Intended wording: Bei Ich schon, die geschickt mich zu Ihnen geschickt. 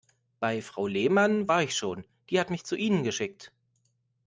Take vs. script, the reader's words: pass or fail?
fail